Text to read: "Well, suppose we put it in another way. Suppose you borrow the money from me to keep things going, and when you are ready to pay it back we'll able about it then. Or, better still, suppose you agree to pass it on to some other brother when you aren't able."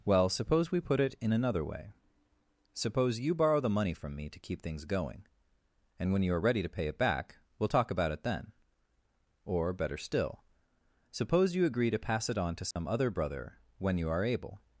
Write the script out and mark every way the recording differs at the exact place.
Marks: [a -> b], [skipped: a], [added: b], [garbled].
"Well, suppose we put it in another way. Suppose you borrow the money from me to keep things going, and when you are ready to pay it back we'll [able -> talk] about it then. Or, better still, suppose you agree to pass it on to some other brother when you [aren't -> are] able."